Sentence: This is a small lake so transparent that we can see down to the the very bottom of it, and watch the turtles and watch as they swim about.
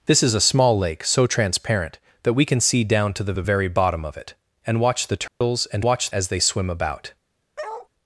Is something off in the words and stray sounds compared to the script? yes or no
yes